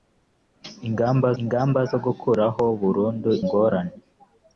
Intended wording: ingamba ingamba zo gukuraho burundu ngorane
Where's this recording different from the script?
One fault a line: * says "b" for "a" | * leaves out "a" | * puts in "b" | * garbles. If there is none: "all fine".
all fine